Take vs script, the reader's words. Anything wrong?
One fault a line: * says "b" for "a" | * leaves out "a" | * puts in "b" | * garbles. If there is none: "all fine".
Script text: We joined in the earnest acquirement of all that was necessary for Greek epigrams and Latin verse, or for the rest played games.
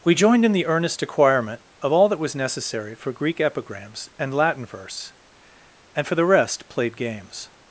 * says "and" for "or"